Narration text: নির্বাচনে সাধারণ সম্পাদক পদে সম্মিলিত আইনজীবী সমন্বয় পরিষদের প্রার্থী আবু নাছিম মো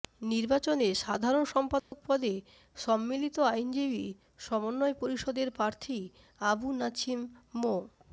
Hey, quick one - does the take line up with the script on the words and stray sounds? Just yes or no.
no